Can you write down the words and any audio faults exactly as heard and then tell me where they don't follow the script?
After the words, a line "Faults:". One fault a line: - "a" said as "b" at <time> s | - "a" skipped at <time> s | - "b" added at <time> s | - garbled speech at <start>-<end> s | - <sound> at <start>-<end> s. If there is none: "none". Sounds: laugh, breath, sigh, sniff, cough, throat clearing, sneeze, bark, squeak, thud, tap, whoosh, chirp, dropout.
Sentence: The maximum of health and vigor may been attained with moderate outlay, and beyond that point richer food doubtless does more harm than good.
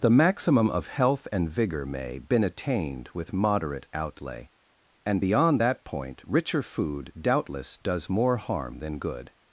The maximum of health and vigor may been attained with moderate outlay, and beyond that point richer food doubtless does more harm than good.
Faults:
none